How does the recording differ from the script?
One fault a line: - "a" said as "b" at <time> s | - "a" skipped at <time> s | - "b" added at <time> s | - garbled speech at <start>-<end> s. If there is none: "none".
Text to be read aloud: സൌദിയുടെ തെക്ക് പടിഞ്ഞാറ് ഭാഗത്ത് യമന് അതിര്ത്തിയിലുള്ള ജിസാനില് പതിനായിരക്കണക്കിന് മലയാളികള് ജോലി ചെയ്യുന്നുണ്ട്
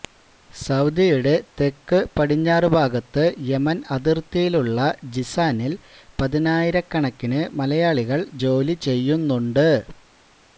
none